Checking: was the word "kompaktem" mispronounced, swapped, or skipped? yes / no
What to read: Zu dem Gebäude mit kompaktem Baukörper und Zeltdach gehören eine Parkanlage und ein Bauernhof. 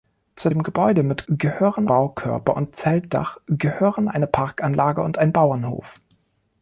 yes